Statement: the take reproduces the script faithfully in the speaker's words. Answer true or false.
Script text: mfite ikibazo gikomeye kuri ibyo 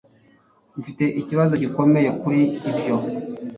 true